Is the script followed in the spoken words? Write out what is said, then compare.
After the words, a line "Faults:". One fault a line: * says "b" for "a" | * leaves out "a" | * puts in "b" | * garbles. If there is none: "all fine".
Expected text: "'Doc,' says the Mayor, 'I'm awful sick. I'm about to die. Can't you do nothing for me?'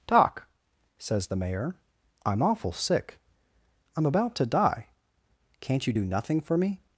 "'Doc,' says the Mayor, 'I'm awful sick. I'm about to die. Can't you do nothing for me?'
Faults:
all fine